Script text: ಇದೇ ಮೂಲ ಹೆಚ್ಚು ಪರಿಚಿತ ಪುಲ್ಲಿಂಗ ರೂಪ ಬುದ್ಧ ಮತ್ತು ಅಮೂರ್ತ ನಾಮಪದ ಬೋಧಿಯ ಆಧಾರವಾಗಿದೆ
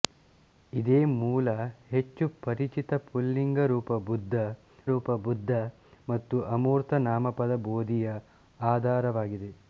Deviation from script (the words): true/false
true